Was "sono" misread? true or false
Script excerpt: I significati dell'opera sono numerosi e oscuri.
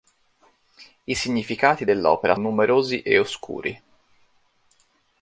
true